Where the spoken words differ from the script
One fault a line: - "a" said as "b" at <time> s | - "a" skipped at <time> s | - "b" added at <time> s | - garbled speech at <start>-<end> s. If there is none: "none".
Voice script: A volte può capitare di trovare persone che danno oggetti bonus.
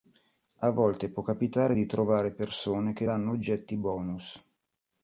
none